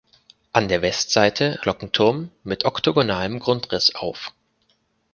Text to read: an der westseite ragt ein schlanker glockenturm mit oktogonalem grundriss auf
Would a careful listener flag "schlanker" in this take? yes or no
yes